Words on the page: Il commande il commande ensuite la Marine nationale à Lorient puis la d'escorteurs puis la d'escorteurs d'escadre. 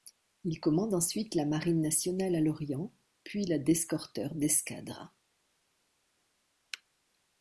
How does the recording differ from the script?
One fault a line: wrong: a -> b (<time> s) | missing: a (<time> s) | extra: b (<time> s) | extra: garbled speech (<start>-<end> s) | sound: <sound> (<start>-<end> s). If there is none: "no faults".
missing: il commande (0.9 s)
missing: puis la d'escorteurs (4.3 s)